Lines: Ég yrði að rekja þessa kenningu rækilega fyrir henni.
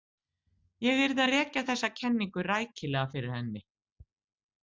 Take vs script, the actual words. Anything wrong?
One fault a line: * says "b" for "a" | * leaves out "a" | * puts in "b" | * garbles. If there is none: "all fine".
all fine